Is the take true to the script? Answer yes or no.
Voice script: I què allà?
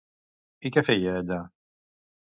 no